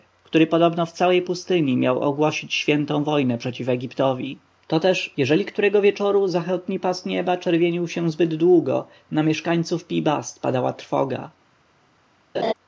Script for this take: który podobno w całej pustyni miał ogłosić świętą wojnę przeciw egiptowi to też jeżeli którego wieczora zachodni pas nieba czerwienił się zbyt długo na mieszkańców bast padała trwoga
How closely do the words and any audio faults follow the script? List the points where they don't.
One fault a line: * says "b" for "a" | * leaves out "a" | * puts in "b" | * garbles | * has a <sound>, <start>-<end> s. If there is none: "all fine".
* puts in "pi"
* has a laugh, 12.3-12.5 s